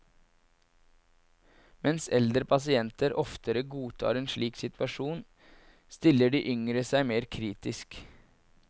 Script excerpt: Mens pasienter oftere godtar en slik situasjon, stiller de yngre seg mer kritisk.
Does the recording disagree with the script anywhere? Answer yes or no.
yes